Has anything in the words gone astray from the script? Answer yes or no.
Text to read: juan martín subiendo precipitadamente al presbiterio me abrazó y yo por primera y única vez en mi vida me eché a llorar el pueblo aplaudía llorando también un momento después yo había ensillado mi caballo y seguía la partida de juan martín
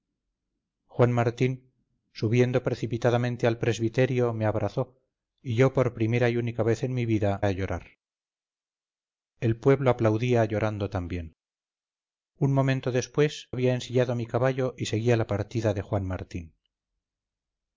yes